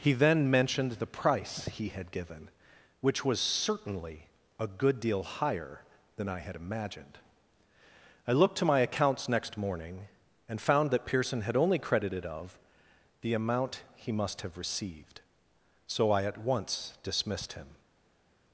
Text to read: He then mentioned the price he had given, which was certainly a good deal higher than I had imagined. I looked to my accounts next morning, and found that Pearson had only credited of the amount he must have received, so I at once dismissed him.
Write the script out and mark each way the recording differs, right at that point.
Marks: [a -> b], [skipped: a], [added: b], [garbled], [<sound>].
He then mentioned the price he had given, which was certainly a good deal higher than I had imagined. I looked to my accounts next morning, and found that Pearson had only credited of the amount he must have received, so I at once dismissed him.